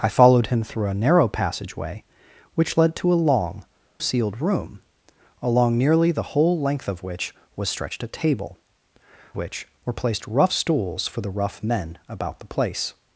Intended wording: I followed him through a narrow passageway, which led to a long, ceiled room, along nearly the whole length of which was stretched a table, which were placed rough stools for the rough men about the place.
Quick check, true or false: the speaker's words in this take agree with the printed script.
true